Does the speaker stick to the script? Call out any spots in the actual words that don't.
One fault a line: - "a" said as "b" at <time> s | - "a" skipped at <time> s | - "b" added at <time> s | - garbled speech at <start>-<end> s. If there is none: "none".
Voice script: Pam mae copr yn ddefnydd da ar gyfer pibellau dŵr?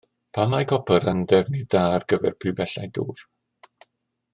none